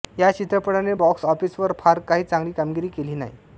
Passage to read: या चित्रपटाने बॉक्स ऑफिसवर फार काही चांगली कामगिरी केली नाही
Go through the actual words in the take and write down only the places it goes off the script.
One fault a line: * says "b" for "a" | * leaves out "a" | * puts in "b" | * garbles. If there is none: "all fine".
all fine